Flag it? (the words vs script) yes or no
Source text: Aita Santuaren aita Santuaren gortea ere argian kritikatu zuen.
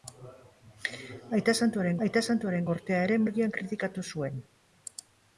no